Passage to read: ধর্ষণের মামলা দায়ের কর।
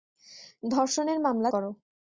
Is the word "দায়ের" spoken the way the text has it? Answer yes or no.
no